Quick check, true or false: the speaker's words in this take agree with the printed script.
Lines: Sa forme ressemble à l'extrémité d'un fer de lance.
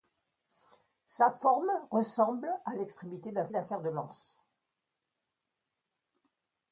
false